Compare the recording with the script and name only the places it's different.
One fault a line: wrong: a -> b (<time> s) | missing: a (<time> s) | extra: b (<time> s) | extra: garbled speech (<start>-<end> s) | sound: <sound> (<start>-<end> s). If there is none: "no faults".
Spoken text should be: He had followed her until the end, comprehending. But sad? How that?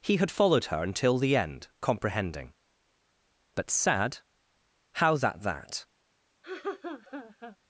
extra: that (5.4 s)
sound: laugh (6.4-7.6 s)